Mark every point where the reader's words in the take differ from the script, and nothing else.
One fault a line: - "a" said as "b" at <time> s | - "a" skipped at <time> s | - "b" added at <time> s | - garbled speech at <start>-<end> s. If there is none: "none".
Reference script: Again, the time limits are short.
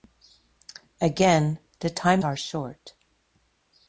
- "limits" skipped at 2.2 s